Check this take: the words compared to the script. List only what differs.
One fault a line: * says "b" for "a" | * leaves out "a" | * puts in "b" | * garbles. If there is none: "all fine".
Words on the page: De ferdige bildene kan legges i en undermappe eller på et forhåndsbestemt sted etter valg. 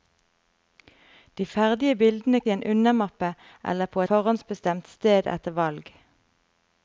* leaves out "kan legges"
* leaves out "et"